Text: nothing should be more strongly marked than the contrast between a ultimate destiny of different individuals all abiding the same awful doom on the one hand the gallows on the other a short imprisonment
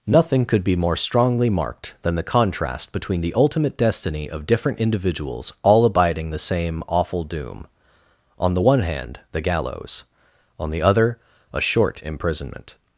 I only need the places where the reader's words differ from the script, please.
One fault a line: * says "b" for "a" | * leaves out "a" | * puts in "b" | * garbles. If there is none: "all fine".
* says "could" for "should"
* says "the" for "a"